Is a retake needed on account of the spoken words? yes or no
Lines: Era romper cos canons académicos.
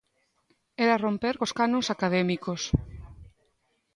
no